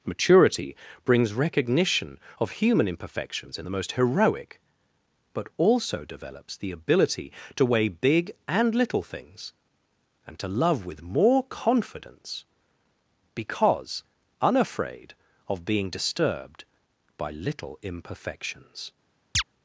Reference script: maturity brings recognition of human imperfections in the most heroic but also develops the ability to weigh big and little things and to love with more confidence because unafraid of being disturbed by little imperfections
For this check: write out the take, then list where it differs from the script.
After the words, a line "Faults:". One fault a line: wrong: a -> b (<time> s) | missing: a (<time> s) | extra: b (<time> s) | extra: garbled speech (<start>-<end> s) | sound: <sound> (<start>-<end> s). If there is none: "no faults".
maturity brings recognition of human imperfections in the most heroic but also develops the ability to weigh big and little things and to love with more confidence because unafraid of being disturbed by little imperfections
Faults:
sound: chirp (19.3-19.4 s)